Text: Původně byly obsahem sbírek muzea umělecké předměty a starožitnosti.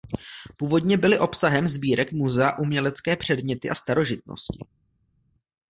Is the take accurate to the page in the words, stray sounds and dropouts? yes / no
yes